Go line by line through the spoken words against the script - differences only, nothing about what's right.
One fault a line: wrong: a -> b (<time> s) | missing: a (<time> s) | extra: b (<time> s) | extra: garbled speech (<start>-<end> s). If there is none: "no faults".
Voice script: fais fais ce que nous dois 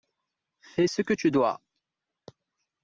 missing: fais (0.9 s)
wrong: nous -> tu (1.1 s)